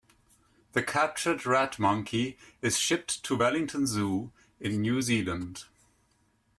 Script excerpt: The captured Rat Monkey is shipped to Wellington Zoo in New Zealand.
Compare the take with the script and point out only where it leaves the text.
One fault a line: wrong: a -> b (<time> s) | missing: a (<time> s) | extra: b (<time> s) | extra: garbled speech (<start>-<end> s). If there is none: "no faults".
no faults